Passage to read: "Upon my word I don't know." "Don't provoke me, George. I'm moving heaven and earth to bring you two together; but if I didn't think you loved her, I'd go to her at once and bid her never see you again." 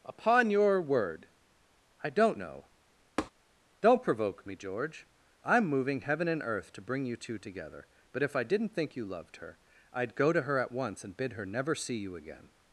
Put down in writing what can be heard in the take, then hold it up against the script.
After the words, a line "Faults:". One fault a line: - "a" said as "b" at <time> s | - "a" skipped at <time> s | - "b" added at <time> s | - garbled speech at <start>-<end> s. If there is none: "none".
"Upon your word I don't know." "Don't provoke me, George. I'm moving heaven and earth to bring you two together; but if I didn't think you loved her, I'd go to her at once and bid her never see you again."
Faults:
- "my" said as "your" at 0.5 s